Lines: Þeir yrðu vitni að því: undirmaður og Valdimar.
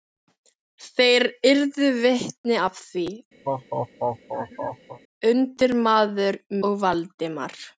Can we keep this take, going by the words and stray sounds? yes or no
no